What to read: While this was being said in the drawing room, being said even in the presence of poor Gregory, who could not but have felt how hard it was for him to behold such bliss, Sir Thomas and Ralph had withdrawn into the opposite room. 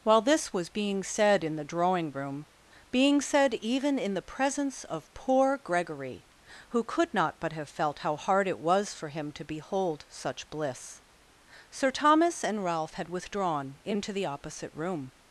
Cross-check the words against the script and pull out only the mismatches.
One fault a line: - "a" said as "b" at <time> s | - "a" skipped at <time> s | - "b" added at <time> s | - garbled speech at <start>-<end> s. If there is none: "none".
none